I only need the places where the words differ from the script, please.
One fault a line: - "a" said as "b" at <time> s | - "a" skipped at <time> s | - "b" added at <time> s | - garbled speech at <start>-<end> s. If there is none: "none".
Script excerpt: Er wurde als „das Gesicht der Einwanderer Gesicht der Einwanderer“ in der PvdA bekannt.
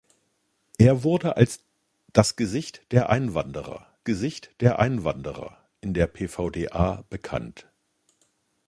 none